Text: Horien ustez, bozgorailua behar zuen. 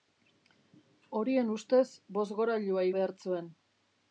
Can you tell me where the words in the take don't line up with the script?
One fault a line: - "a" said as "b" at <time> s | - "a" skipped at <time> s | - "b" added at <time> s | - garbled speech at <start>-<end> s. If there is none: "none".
none